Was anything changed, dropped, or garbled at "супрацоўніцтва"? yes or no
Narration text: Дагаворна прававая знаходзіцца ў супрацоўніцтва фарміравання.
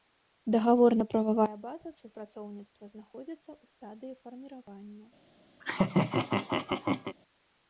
yes